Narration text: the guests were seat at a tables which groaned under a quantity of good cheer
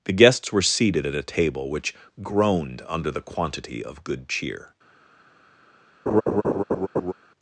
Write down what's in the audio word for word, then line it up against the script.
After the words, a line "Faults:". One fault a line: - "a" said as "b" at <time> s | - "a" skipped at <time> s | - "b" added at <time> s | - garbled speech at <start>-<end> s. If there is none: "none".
the guests were seated at a table which groaned under the quantity of good cheer
Faults:
- "seat" said as "seated" at 0.6 s
- "tables" said as "table" at 1.2 s
- "a" said as "the" at 3.1 s